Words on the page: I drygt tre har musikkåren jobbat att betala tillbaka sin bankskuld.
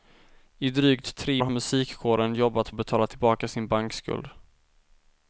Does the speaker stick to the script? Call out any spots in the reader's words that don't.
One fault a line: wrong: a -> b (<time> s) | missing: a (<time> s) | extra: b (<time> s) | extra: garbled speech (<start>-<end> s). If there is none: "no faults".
no faults